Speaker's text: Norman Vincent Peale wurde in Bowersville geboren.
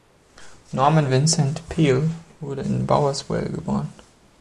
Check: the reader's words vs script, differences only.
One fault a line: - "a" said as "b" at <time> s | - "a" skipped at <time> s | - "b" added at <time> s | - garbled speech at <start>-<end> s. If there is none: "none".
none